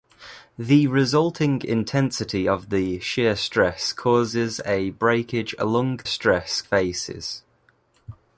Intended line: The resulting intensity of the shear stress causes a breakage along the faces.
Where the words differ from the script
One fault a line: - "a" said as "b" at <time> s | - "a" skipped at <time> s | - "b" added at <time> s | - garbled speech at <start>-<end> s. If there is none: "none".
- "the" said as "stress" at 6.0 s